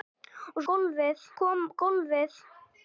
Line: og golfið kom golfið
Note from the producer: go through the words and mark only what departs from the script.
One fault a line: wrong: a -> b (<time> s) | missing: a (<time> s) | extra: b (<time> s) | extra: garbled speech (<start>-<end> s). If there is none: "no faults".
no faults